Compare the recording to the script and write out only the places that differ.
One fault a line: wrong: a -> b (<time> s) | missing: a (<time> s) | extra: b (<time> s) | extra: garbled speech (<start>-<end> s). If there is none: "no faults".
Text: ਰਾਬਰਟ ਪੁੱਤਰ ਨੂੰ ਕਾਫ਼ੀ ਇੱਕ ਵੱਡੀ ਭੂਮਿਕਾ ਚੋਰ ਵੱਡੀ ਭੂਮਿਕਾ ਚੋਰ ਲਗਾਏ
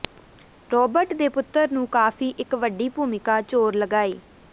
extra: ਦੇ (1.1 s)
missing: ਵੱਡੀ ਭੂਮਿਕਾ ਚੋਰ (3.8 s)